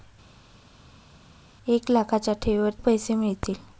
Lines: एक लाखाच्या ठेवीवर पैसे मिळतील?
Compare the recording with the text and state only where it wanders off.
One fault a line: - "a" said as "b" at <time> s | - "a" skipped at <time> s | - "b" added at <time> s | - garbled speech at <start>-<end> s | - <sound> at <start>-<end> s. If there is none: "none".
none